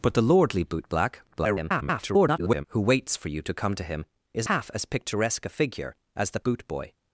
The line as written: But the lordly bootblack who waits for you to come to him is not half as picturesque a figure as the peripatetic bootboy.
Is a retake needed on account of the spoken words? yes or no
yes